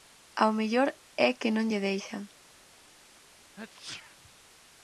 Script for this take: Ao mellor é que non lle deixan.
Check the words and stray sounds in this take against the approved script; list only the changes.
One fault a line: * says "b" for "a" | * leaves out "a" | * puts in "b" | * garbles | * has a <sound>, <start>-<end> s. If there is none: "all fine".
* has a sneeze, 3.6-4.2 s